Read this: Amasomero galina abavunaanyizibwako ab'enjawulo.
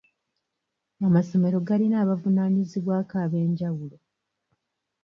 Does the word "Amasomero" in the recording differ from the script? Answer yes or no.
no